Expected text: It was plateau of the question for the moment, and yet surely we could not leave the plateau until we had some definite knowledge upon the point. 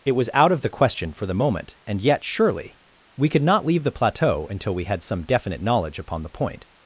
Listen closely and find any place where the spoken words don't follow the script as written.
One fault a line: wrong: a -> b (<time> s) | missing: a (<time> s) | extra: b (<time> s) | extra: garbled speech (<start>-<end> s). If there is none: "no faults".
wrong: plateau -> out (0.3 s)